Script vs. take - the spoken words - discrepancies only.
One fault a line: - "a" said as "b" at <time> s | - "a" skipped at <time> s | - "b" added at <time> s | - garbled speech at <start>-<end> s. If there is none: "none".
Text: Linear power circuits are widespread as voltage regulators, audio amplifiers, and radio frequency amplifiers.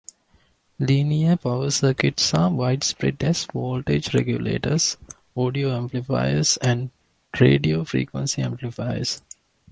none